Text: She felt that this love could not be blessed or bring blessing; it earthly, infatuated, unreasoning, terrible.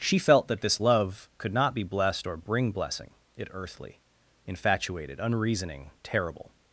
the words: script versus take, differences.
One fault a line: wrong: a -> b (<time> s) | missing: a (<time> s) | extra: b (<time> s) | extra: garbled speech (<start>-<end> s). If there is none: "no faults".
no faults